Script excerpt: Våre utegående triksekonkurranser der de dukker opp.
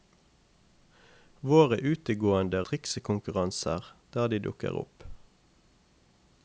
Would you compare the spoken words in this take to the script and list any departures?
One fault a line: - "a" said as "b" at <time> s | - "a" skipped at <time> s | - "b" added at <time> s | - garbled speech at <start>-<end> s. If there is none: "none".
none